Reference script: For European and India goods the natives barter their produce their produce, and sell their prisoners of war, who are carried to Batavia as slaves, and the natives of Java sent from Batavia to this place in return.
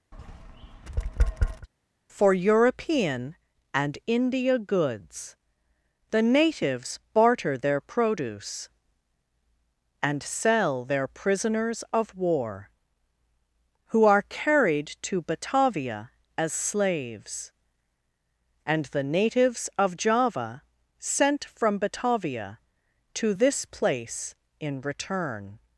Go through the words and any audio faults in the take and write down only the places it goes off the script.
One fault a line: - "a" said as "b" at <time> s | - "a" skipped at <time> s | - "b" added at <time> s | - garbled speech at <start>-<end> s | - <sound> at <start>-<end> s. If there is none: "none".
- tap at 0.1-1.7 s
- "their produce" skipped at 8.7 s